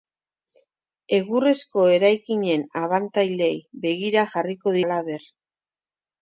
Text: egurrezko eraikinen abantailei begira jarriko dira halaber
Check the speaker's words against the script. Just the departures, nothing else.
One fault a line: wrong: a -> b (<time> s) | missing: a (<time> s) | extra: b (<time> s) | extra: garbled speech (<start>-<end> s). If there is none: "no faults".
missing: dira (4.8 s)